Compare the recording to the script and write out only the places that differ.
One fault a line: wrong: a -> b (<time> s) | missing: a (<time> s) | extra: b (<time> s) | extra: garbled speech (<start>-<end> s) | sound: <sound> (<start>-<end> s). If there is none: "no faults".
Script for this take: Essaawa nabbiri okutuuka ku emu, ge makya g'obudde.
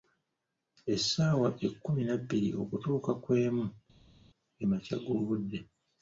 extra: ekkumi (1.7 s)